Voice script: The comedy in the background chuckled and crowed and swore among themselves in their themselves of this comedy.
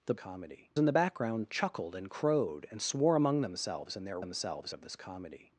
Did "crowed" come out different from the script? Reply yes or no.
no